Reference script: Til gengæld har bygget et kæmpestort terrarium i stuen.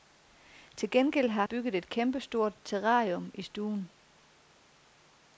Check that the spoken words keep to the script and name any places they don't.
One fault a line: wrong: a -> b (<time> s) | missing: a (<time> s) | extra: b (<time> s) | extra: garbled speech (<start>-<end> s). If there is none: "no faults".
no faults